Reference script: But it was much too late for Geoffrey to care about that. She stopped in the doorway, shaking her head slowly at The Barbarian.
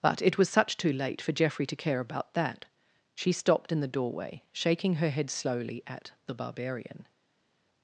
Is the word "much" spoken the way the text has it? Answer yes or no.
no